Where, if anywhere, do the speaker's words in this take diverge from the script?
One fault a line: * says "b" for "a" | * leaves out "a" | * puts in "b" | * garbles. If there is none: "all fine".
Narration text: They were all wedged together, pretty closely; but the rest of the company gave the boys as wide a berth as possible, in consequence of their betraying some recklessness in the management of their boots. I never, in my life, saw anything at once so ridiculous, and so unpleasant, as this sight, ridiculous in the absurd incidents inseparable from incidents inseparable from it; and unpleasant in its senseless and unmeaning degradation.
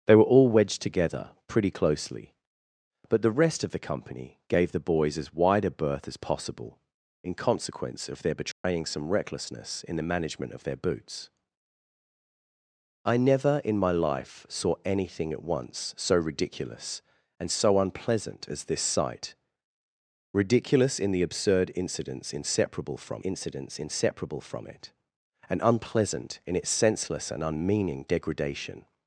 all fine